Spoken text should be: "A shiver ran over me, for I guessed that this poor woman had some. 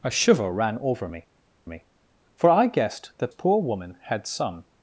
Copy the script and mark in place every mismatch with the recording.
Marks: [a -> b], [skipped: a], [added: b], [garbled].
"A shiver ran over me, [added: me] for I guessed that [skipped: this] poor woman had some.